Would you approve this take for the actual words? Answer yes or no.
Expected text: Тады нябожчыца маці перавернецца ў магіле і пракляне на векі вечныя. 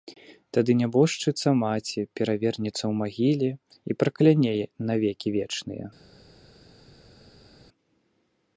yes